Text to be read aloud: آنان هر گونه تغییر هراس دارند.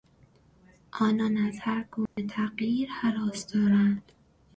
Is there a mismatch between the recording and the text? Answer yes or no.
yes